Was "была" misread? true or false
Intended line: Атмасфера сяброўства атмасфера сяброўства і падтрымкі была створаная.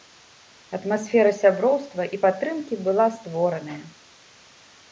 false